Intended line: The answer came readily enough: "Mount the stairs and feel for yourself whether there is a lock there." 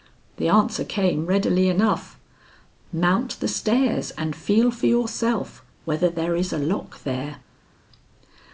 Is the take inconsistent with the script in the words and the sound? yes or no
no